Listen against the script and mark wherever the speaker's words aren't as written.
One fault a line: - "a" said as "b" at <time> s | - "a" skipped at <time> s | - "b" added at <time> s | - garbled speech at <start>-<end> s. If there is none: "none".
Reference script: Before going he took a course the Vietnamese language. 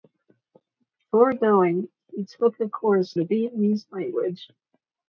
none